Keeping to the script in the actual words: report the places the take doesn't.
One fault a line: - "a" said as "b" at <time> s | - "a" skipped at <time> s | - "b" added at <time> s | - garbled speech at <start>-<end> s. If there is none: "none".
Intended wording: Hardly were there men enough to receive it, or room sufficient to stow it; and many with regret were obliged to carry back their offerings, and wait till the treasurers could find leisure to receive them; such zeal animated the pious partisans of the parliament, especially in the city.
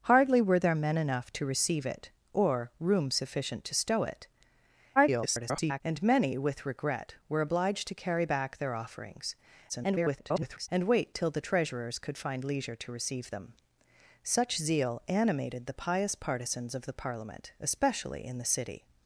- garbled speech at 5.0-5.8 s
- garbled speech at 9.7-10.7 s